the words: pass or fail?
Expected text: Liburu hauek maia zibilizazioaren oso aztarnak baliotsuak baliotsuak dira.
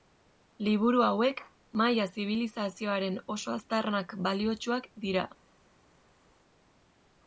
fail